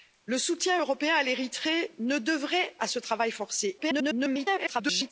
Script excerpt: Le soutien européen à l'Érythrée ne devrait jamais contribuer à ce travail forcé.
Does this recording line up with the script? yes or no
no